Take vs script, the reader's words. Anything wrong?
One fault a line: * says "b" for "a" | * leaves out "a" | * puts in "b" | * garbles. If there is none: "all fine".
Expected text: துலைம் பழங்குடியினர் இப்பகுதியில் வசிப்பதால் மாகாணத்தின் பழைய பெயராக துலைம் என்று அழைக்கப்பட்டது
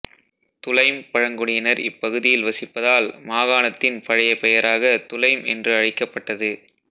all fine